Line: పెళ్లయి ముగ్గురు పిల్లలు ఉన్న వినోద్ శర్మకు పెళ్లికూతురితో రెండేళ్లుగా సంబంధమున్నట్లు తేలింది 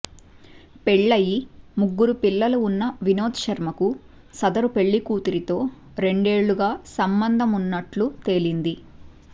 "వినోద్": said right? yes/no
yes